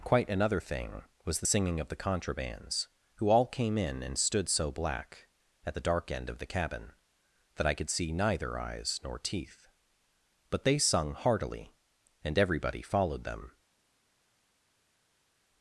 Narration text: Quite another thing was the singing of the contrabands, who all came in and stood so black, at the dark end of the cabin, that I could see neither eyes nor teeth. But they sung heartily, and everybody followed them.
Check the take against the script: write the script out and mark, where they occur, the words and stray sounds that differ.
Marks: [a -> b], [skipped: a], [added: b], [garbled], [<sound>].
Quite another thing was the singing of the contrabands, who all came in and stood so black, at the dark end of the cabin, that I could see neither eyes nor teeth. But they sung heartily, and everybody followed them.